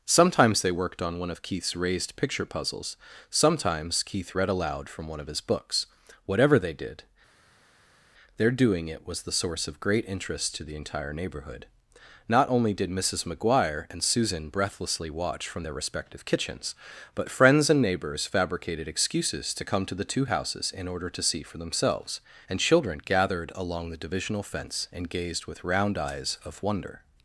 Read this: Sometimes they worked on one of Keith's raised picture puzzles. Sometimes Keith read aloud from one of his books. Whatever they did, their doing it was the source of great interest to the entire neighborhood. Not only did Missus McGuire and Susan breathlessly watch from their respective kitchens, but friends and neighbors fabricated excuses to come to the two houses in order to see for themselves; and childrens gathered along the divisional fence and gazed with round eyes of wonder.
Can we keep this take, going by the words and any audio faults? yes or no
no